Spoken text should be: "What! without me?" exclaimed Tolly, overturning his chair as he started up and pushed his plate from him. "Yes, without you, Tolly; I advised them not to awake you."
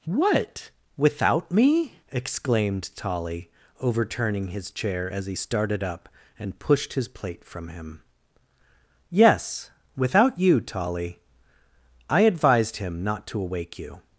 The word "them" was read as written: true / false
false